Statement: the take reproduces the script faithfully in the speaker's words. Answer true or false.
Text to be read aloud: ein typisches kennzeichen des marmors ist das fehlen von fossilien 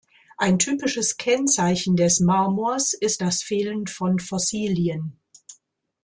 true